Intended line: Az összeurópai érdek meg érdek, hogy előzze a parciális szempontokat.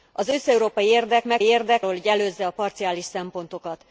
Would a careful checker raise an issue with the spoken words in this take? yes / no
no